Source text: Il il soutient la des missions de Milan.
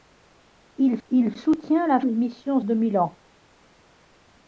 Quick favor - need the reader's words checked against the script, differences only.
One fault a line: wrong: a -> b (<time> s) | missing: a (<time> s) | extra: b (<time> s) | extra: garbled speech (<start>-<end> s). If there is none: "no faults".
no faults